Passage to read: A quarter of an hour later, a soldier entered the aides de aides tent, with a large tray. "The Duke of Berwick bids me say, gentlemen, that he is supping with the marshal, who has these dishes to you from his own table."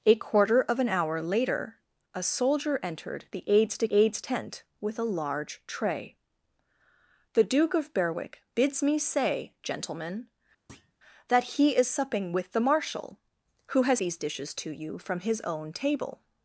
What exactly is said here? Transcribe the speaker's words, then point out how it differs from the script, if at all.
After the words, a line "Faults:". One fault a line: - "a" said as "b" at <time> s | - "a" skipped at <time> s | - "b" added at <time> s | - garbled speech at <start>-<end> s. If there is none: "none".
A quarter of an hour later, a soldier entered the aides de aides tent, with a large tray. "The Duke of Berwick bids me say, gentlemen, that he is supping with the marshal, who has these dishes to you from his own table."
Faults:
none